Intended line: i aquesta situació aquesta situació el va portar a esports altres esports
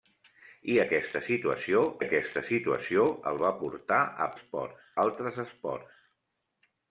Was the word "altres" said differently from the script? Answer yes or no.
no